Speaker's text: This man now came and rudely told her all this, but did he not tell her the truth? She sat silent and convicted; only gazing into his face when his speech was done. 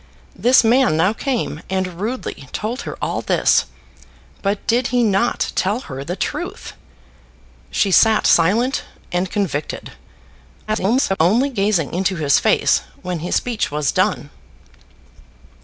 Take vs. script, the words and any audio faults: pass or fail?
fail